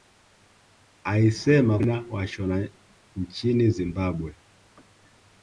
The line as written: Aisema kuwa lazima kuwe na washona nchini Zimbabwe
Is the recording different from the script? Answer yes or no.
yes